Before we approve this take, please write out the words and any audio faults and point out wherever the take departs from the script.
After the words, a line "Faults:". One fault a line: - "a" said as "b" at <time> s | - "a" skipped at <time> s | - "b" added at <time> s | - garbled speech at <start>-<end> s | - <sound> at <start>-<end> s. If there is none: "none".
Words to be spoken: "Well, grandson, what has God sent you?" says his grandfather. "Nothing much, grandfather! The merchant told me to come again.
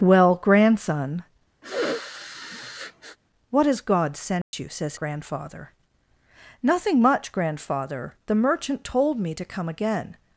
"Well, grandson, what has God sent you?" says grandfather. "Nothing much, grandfather! The merchant told me to come again.
Faults:
- sniff at 1.6-3.2 s
- dropout at 4.4-4.5 s
- "his" skipped at 4.9 s